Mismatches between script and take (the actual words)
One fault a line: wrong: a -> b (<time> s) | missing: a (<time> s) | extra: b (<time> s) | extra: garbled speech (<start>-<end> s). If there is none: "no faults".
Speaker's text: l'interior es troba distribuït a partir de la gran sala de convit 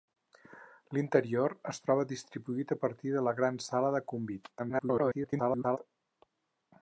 extra: garbled speech (4.6-5.8 s)